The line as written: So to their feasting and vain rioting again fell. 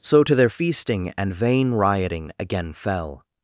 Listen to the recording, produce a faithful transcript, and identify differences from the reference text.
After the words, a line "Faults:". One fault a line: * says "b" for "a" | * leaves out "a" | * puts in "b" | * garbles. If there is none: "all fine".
So to their feasting and vain rioting again fell.
Faults:
all fine